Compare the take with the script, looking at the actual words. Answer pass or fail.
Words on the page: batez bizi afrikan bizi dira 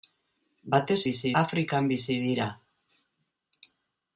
pass